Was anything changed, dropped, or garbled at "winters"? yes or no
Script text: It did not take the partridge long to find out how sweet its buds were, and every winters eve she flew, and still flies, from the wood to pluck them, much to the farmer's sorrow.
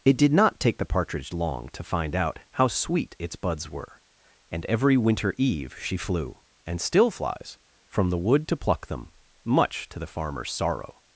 yes